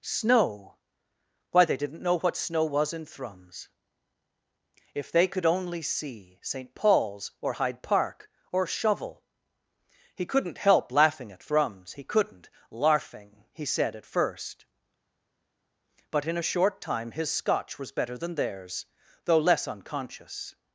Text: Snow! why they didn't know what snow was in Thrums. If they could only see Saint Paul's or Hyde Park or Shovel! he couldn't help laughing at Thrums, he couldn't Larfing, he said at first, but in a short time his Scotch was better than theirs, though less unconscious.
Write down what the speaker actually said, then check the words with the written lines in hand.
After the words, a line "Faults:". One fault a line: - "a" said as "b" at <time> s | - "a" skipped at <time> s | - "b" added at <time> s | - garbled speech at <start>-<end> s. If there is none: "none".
Snow! why they didn't know what snow was in Thrums. If they could only see Saint Paul's or Hyde Park or Shovel! he couldn't help laughing at Thrums, he couldn't Larfing, he said at first, but in a short time his Scotch was better than theirs, though less unconscious.
Faults:
none